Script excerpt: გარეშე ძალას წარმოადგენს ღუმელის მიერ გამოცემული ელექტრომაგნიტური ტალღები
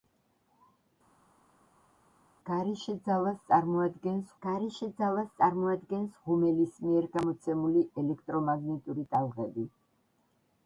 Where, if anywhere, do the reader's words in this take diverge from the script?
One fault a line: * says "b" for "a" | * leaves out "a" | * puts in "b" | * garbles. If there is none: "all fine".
* puts in "გარეშე ძალას წარმოადგენს"